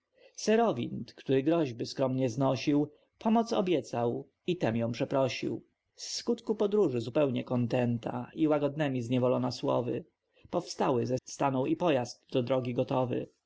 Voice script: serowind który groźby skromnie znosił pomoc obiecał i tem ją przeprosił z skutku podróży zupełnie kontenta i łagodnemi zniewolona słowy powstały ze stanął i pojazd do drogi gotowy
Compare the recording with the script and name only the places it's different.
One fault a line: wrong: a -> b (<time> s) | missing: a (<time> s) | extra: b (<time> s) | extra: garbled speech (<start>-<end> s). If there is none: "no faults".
no faults